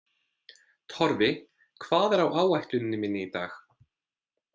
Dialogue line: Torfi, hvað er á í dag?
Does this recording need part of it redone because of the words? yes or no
yes